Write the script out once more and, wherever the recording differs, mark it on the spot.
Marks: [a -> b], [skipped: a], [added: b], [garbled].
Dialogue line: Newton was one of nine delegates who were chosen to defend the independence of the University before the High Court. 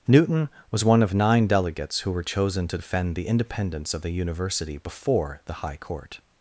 Newton was one of nine delegates who were chosen to defend the independence of the University before the High Court.